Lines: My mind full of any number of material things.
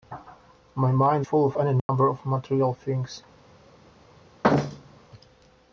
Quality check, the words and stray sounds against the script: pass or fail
fail